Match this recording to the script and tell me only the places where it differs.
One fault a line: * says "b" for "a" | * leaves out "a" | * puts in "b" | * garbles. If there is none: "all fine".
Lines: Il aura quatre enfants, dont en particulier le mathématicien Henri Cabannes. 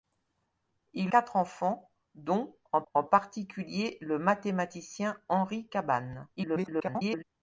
* leaves out "aura"
* puts in "en"
* garbles